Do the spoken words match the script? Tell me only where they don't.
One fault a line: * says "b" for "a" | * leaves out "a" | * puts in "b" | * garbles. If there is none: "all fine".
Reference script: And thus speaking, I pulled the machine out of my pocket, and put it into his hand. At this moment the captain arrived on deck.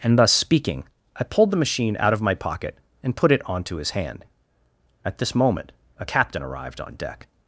* says "onto" for "into"
* says "a" for "the"